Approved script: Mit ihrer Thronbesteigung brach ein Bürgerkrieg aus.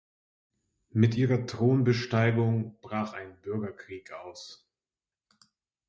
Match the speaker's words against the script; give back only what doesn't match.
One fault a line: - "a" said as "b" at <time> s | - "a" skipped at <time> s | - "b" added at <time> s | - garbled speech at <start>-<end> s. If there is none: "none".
none